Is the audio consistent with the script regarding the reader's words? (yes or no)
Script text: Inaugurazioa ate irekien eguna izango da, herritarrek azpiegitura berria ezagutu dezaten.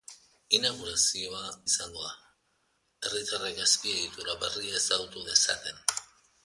no